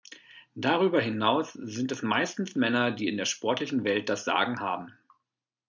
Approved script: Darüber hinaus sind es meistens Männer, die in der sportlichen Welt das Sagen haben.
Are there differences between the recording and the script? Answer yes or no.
no